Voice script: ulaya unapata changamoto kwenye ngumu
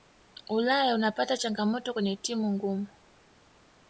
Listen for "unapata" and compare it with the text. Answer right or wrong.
right